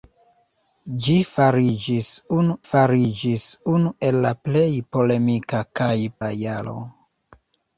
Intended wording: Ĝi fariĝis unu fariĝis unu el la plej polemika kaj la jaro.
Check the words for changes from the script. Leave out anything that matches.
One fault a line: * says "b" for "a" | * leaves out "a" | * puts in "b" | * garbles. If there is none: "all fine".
all fine